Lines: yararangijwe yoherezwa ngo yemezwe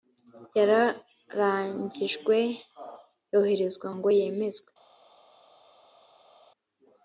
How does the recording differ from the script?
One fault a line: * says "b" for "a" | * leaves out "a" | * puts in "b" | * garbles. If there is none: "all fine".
all fine